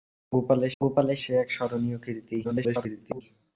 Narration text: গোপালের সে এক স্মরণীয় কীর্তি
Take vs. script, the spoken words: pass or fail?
fail